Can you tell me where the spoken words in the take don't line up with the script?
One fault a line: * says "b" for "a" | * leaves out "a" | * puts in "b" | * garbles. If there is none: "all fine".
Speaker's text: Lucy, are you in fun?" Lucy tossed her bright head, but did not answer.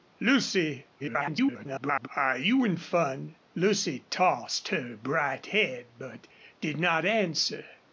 * garbles